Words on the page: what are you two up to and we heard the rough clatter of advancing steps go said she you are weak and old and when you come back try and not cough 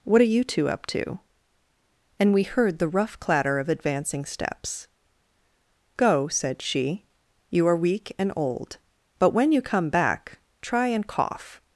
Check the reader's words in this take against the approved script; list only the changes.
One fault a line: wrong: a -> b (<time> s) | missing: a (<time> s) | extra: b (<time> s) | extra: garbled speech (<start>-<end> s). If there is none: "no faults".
wrong: and -> but (9.2 s)
missing: not (11.1 s)